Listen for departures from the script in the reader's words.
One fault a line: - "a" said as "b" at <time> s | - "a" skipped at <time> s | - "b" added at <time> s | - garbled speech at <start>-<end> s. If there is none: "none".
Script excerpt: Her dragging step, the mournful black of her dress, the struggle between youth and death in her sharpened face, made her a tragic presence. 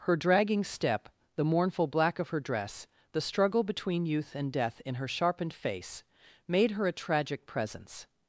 none